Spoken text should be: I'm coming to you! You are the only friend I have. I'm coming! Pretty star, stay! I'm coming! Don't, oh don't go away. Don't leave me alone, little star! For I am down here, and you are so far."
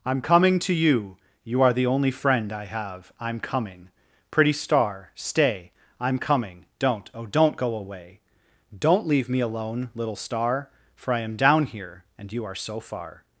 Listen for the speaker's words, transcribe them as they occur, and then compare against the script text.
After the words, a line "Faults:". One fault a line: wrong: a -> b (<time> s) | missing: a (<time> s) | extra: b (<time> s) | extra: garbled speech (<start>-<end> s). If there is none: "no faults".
I'm coming to you! You are the only friend I have. I'm coming! Pretty star, stay! I'm coming! Don't, oh don't go away. Don't leave me alone, little star! For I am down here, and you are so far."
Faults:
no faults